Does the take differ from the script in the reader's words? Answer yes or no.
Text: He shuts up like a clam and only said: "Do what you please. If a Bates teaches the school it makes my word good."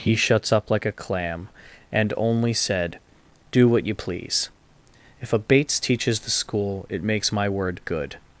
no